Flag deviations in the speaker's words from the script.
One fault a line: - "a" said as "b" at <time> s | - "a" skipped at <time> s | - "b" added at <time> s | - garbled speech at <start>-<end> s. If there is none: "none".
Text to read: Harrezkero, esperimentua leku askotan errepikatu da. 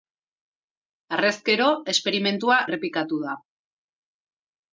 - "leku askotan" skipped at 2.6 s